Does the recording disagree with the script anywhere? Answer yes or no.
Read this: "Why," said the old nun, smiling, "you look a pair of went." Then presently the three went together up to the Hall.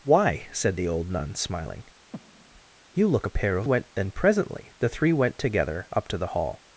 no